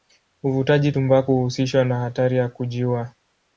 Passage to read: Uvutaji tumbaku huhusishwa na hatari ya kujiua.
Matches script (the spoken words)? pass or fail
pass